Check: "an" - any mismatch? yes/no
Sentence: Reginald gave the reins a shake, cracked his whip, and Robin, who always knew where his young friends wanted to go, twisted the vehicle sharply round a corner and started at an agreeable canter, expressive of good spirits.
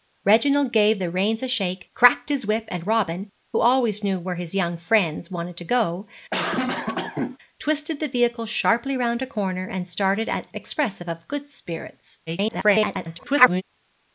yes